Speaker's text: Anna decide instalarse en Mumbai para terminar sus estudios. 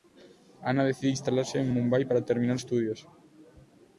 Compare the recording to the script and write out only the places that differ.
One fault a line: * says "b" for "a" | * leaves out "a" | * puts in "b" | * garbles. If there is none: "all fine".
* leaves out "sus"